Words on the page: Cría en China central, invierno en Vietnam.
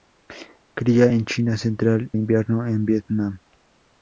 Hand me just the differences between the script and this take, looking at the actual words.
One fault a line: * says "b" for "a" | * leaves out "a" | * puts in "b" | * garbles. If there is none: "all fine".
all fine